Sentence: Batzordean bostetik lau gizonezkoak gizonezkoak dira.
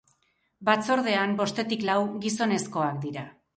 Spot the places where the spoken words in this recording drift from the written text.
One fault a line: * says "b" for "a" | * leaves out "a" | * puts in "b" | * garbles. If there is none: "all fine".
* leaves out "gizonezkoak"